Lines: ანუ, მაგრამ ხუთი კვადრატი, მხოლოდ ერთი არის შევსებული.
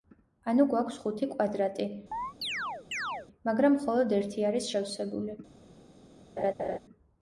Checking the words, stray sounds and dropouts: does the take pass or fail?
fail